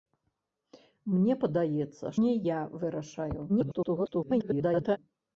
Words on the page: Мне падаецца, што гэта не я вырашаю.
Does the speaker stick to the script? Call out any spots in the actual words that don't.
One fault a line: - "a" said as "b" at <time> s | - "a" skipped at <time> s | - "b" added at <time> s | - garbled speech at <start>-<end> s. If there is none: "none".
- "што гэта" skipped at 2.0 s
- garbled speech at 3.5-5.0 s